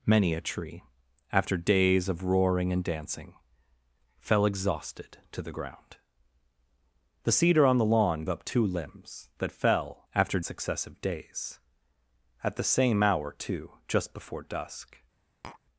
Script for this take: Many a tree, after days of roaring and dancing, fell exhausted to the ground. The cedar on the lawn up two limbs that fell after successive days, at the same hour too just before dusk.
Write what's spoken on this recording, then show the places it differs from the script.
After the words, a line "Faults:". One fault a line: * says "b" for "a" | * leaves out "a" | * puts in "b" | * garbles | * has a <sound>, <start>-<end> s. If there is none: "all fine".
Many a tree, after days of roaring and dancing, fell exhausted to the ground. The cedar on the lawn up two limbs that fell after successive days, at the same hour too just before dusk.
Faults:
* has a tap, 15.4-15.6 s